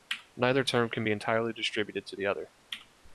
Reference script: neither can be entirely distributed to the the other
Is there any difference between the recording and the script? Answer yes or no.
yes